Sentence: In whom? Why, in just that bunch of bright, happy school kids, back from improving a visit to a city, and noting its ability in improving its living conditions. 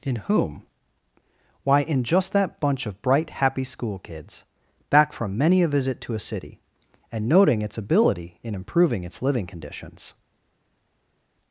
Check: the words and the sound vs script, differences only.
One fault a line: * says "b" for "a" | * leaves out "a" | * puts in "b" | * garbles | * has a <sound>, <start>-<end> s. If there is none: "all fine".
* says "many" for "improving"